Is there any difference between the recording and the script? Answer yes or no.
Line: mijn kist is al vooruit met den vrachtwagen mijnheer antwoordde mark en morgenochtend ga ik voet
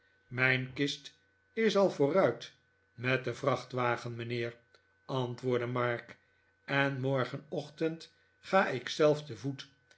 yes